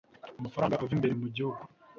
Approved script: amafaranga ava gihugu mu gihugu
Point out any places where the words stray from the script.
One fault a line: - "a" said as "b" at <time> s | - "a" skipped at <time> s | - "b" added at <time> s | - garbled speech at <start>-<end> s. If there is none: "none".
- "gihugu" said as "imbere" at 1.0 s